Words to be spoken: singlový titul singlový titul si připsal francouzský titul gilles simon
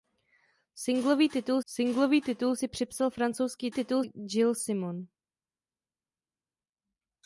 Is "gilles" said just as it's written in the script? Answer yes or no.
yes